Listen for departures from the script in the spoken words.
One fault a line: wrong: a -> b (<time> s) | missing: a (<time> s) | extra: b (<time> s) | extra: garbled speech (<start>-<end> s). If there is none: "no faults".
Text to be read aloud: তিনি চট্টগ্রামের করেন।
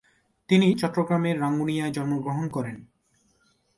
extra: রাঙ্গুনিয়ায় জন্মগ্রহণ (1.4 s)